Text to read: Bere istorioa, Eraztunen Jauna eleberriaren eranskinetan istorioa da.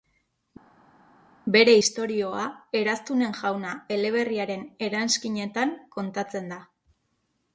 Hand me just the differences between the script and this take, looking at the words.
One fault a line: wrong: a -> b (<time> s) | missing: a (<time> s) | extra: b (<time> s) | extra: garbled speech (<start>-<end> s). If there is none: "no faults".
wrong: istorioa -> kontatzen (6.0 s)